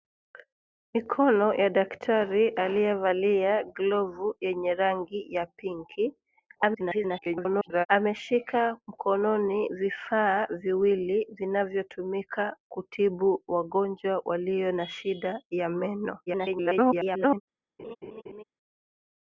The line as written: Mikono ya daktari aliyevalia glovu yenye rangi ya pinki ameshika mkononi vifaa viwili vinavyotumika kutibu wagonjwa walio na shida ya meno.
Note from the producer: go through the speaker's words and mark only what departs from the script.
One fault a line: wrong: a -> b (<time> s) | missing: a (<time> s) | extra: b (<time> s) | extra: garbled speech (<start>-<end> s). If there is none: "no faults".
extra: garbled speech (6.6-7.9 s)
extra: garbled speech (16.3-17.4 s)